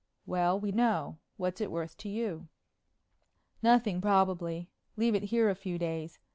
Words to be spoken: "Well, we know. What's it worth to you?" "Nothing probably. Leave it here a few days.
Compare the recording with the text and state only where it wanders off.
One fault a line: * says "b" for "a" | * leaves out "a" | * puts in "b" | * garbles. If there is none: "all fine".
all fine